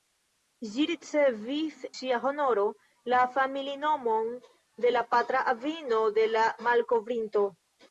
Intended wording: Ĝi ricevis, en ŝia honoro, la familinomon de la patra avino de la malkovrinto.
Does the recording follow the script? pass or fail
fail